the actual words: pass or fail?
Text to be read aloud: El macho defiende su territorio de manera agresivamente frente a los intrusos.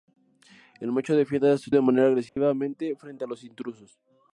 fail